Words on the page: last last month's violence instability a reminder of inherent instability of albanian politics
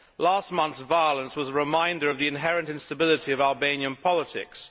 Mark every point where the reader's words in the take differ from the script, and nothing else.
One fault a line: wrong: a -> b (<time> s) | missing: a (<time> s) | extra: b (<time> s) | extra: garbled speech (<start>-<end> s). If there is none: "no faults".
missing: last (0.5 s)
wrong: instability -> was (1.4 s)
extra: the (2.2 s)